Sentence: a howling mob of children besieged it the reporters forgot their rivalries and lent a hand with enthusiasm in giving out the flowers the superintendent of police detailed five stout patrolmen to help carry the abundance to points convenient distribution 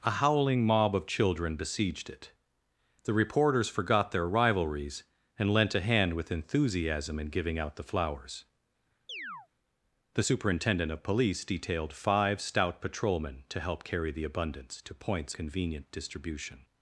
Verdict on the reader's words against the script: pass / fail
pass